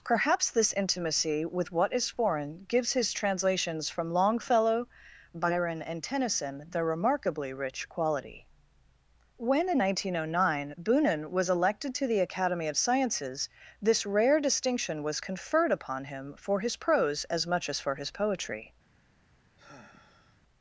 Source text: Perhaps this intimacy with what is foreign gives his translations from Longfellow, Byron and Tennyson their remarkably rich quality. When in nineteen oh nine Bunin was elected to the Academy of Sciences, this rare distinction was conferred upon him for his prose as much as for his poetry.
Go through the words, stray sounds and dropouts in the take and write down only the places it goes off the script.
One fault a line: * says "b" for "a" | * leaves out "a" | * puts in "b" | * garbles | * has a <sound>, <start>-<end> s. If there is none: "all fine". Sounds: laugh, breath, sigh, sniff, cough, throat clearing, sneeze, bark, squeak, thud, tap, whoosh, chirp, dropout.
* has a sigh, 19.6-20.4 s